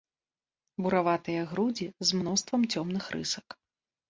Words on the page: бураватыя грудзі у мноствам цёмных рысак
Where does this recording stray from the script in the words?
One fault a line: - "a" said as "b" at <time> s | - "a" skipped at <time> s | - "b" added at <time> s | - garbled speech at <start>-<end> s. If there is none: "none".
- "у" said as "з" at 2.1 s